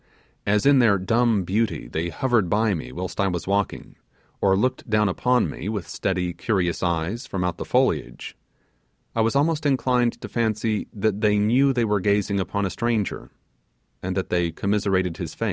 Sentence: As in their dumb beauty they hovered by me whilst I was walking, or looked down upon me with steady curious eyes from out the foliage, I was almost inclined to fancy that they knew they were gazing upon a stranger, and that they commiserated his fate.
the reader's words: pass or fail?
pass